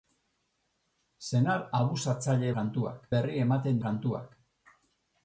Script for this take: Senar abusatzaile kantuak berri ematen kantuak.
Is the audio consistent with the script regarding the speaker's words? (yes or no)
yes